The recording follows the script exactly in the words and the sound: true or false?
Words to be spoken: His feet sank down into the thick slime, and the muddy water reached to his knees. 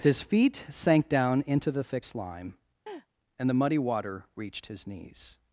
false